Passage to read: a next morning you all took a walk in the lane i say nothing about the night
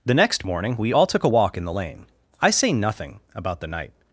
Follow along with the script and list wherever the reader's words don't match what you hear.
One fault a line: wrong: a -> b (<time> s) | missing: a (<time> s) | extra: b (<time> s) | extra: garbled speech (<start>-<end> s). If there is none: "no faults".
wrong: a -> the (0.0 s)
wrong: you -> we (0.8 s)